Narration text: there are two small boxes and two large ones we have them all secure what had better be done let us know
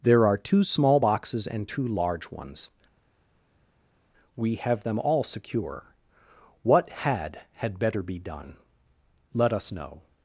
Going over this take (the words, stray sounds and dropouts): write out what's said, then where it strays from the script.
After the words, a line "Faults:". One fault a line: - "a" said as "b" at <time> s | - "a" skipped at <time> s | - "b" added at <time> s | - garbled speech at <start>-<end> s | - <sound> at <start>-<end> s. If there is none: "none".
there are two small boxes and two large ones we have them all secure what had had better be done let us know
Faults:
- "had" added at 7.5 s